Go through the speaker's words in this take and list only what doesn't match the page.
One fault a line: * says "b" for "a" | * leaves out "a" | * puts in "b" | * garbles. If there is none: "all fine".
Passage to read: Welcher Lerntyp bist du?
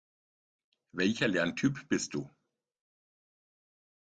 all fine